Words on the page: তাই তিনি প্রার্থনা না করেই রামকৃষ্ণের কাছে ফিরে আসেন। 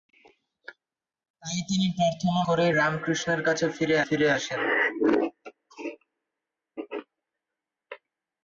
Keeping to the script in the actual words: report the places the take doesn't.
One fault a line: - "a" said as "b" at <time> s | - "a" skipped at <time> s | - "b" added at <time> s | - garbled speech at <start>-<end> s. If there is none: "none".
- "না" skipped at 2.4 s
- "ফিরে" added at 4.1 s